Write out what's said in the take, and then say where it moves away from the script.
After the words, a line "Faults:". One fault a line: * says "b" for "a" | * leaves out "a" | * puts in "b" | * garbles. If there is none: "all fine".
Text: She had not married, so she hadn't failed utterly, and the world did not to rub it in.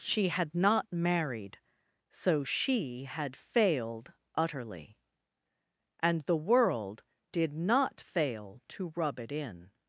She had not married, so she had failed utterly, and the world did not fail to rub it in.
Faults:
* says "had" for "hadn't"
* puts in "fail"